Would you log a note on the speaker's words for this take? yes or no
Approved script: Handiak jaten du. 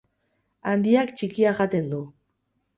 yes